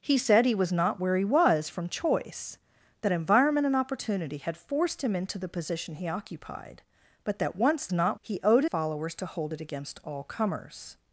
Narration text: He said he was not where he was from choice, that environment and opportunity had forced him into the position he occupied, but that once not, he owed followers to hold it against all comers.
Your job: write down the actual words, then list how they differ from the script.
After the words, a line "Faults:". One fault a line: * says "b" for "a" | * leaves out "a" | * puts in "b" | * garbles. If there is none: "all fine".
He said he was not where he was from choice, that environment and opportunity had forced him into the position he occupied, but that once not, he owed followers to hold it against all comers.
Faults:
all fine